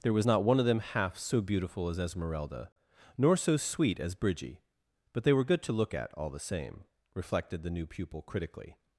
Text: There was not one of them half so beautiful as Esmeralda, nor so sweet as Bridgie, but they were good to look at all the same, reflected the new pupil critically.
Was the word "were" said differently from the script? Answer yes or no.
no